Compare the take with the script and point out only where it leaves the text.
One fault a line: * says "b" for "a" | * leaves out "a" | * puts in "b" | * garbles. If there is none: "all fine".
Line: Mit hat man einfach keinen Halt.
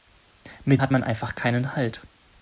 all fine